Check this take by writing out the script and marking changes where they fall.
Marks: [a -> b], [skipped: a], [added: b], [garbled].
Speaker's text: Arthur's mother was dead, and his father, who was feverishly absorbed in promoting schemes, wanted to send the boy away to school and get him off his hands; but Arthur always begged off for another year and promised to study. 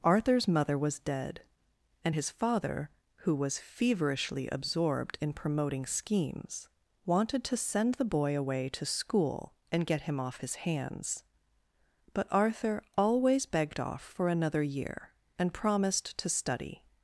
Arthur's mother was dead, and his father, who was feverishly absorbed in promoting schemes, wanted to send the boy away to school and get him off his hands; but Arthur always begged off for another year and promised to study.